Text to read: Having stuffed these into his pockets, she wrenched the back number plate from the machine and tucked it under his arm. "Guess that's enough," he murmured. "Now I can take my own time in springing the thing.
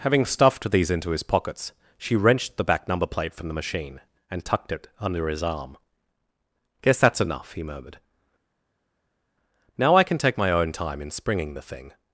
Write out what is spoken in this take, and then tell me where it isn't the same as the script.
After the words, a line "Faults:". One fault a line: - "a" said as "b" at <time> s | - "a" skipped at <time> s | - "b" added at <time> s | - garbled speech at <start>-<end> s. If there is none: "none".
Having stuffed these into his pockets, she wrenched the back number plate from the machine and tucked it under his arm. "Guess that's enough," he murmured. "Now I can take my own time in springing the thing.
Faults:
none